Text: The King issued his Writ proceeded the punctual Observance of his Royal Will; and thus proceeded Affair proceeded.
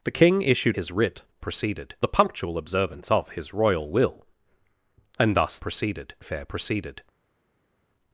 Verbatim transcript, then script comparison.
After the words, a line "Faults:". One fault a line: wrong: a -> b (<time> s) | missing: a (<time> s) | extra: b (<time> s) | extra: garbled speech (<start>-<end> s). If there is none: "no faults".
The King issued his Writ proceeded the punctual Observance of his Royal Will; and thus proceeded Affair proceeded.
Faults:
no faults